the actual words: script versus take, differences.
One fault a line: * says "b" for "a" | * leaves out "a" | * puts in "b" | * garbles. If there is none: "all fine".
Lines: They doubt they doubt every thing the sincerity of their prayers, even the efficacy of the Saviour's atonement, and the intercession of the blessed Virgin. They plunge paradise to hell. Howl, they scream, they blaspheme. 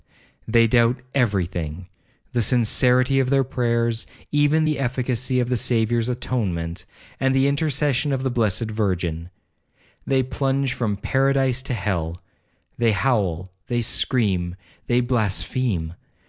* leaves out "they doubt"
* puts in "from"
* puts in "They"